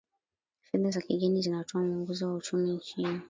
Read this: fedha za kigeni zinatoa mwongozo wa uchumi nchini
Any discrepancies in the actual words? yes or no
no